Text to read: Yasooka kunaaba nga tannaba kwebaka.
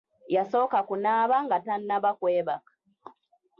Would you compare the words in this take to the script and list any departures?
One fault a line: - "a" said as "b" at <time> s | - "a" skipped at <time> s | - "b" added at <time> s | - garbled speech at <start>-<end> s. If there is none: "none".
none